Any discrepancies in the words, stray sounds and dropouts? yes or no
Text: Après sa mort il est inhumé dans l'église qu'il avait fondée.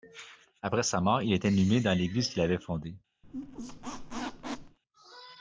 yes